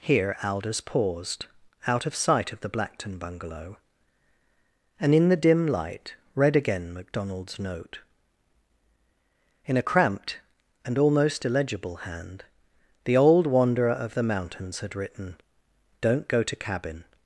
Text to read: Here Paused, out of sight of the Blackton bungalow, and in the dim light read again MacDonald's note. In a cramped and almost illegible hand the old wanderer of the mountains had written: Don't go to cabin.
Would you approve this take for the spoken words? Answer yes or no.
no